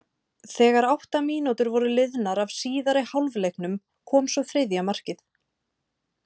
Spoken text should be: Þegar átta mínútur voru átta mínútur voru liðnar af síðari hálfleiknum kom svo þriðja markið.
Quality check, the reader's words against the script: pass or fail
fail